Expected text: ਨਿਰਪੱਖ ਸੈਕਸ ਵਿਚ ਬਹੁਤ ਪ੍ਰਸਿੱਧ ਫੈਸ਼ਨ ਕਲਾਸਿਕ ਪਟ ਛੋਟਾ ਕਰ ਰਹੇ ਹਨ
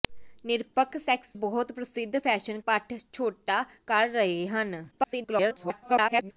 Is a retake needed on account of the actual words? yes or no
yes